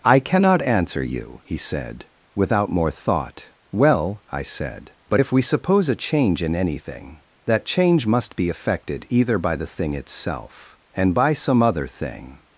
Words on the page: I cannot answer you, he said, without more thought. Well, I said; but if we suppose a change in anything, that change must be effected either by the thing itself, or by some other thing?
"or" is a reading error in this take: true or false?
true